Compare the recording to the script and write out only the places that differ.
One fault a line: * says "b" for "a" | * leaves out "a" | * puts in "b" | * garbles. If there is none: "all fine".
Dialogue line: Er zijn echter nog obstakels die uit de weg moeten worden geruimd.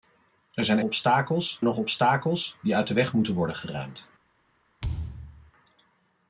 * says "obstakels" for "echter"